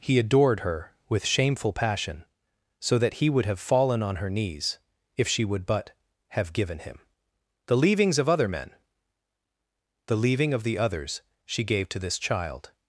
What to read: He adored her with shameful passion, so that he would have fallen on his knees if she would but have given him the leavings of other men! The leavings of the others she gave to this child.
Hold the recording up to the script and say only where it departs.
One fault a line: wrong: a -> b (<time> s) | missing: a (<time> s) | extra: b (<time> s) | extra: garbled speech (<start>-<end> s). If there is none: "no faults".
wrong: his -> her (4.2 s)
wrong: leavings -> leaving (10.2 s)